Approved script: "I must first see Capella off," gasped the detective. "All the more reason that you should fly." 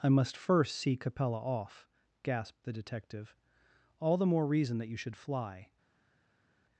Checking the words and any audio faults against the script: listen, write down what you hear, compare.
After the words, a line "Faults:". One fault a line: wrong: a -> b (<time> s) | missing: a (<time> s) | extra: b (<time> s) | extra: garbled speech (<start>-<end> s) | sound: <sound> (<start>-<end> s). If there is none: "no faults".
"I must first see Capella off," gasped the detective. "All the more reason that you should fly."
Faults:
no faults